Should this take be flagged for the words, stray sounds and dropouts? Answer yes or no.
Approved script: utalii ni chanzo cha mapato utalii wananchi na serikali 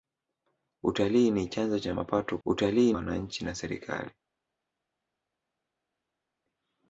no